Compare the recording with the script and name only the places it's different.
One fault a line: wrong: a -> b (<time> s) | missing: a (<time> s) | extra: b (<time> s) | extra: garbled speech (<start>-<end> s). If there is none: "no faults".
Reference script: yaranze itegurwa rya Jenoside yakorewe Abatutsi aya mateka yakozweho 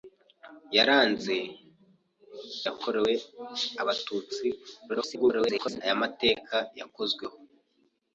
missing: itegurwa rya Jenoside (1.4 s)
extra: garbled speech (4.9-5.8 s)